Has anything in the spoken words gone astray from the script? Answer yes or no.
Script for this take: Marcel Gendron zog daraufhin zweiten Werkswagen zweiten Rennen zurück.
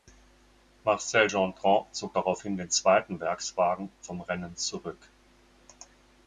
yes